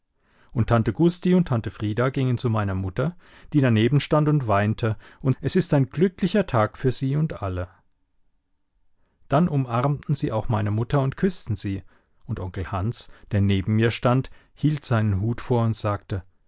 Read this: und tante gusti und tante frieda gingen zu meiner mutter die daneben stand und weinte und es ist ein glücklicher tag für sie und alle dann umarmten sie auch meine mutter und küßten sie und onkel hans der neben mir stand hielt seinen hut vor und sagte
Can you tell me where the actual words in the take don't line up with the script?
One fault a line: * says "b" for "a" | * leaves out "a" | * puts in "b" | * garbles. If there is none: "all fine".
all fine